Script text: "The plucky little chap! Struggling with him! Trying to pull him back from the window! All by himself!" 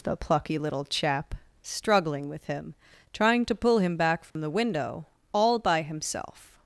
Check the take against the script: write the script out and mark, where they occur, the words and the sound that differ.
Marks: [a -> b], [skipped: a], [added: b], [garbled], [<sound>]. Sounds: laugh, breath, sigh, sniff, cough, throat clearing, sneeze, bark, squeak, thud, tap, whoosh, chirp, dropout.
"The plucky little chap! Struggling with him! Trying to pull him back from [dropout] the window! All by himself!"